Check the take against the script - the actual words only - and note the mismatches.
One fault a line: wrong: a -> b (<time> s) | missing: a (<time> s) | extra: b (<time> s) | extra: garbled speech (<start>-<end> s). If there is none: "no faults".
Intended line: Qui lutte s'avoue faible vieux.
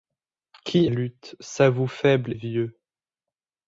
no faults